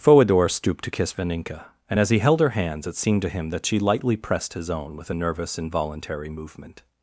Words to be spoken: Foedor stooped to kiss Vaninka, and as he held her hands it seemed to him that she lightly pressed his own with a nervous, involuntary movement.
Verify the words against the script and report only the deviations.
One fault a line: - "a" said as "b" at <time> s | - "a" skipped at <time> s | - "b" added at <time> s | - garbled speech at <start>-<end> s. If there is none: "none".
none